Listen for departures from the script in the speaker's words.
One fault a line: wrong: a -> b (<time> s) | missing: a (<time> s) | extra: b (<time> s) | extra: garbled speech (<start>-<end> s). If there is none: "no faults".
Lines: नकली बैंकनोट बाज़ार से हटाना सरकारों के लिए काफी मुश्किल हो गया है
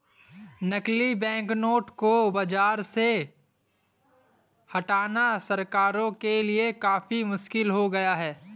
extra: को (1.9 s)